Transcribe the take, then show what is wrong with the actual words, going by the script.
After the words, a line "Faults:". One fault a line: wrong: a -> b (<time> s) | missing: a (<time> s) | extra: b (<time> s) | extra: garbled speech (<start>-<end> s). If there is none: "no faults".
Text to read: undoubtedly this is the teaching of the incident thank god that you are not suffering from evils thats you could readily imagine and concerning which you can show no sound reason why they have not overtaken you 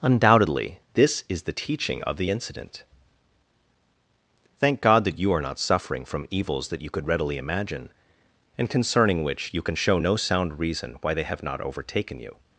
undoubtedly this is the teaching of the incident thank god that you are not suffering from evils that you could readily imagine and concerning which you can show no sound reason why they have not overtaken you
Faults:
wrong: thats -> that (6.7 s)